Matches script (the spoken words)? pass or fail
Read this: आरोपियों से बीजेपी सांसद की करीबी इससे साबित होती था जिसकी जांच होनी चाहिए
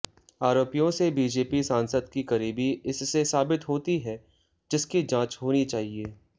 fail